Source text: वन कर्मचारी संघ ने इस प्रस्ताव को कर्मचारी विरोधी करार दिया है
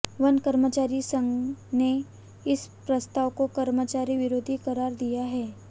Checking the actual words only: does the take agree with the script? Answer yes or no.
yes